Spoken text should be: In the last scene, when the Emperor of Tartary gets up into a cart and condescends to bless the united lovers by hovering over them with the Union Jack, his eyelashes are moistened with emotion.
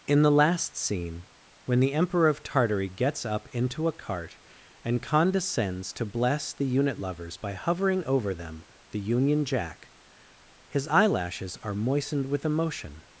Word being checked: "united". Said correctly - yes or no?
no